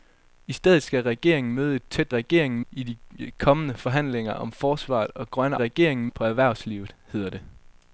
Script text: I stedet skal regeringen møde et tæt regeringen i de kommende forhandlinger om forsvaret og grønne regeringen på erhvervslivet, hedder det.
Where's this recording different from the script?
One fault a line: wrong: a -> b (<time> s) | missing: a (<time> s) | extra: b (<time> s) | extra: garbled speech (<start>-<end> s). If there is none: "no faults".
no faults